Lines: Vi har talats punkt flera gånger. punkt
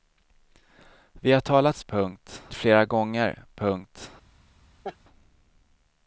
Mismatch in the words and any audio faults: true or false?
true